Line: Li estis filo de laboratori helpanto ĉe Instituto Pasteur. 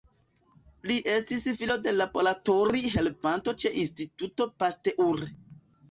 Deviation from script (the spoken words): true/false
false